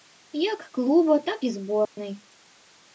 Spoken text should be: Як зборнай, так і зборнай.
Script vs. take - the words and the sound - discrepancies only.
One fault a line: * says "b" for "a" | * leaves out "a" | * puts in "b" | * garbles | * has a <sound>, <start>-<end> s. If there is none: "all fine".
* says "клуба" for "зборнай"
* has a dropout, 1.9-2.0 s